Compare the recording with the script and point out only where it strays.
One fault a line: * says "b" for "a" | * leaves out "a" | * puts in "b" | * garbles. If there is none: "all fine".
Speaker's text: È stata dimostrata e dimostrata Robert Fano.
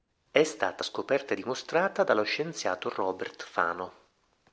* says "scoperta" for "dimostrata"
* puts in "dallo scienziato"